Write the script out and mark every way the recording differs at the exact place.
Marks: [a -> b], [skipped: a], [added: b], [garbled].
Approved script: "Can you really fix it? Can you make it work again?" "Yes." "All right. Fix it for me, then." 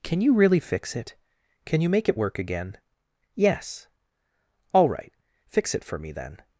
"Can you really fix it? Can you make it work again?" "Yes." "All right. Fix it for me, then."